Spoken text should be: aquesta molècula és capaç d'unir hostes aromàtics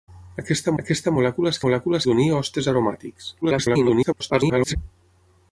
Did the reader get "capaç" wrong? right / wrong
wrong